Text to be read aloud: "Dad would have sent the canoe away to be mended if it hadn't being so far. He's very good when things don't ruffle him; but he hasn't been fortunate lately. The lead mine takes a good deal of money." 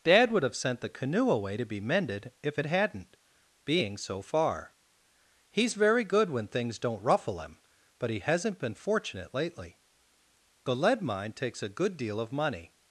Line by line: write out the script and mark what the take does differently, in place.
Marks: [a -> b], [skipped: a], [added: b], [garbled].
"Dad would have sent the canoe away to be mended if it hadn't being so far. He's very good when things don't ruffle him; but he hasn't been fortunate lately. The lead mine takes a good deal of money."